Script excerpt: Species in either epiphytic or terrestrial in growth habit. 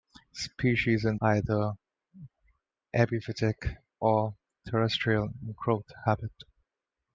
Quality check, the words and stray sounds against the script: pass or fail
pass